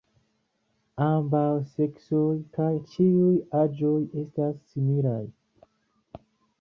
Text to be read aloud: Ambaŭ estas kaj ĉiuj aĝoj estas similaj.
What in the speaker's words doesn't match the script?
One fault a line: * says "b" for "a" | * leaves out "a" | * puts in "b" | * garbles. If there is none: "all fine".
* says "seksoj" for "estas"